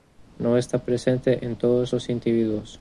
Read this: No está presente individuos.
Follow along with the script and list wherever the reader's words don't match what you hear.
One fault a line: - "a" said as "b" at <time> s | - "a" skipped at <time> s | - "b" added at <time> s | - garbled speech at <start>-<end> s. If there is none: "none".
- "en todos los" added at 1.4 s